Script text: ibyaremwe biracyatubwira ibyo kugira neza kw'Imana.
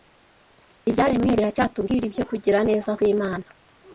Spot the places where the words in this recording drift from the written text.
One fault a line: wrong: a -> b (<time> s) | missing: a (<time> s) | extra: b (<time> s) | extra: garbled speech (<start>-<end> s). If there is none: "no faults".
no faults